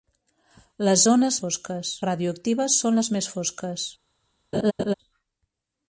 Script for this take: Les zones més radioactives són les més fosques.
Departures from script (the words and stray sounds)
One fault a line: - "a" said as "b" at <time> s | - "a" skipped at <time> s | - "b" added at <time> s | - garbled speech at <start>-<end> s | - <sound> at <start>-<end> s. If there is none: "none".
- "més" said as "fosques" at 1.4 s
- laugh at 4.5-4.9 s